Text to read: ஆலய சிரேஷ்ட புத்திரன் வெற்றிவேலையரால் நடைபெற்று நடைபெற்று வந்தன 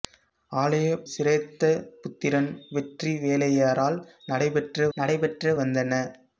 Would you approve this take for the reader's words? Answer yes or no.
yes